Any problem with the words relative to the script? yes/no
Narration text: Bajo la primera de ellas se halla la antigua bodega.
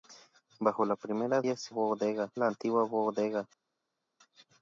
yes